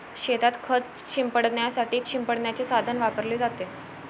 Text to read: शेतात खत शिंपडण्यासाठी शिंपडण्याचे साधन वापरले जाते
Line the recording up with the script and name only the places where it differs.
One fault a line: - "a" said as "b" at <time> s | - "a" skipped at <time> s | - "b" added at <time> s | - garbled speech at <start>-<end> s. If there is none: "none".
none